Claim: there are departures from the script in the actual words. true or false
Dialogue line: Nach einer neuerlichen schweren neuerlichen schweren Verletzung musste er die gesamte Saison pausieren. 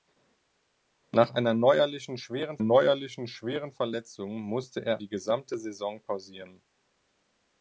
false